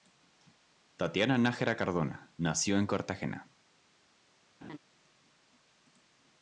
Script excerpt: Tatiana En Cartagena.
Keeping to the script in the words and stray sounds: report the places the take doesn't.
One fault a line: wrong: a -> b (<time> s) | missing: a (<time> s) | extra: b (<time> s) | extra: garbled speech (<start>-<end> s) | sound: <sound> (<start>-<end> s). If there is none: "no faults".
extra: Nájera Cardona nació (1.4 s)
sound: laugh (4.6-4.8 s)